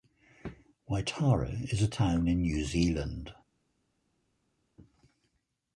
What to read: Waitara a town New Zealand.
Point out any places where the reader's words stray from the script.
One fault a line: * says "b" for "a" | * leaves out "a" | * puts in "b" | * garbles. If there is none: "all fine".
* puts in "is"
* puts in "in"